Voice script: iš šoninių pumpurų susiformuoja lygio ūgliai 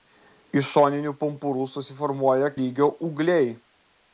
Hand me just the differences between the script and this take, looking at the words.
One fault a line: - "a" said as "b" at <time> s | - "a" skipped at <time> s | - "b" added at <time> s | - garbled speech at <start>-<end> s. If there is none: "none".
none